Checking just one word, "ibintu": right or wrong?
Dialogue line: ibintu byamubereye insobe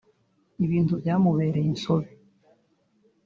right